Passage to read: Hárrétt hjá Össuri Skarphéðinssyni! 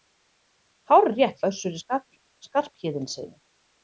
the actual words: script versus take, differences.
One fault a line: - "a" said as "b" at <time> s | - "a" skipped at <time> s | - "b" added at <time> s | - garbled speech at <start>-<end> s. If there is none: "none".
- "hjá" skipped at 1.4 s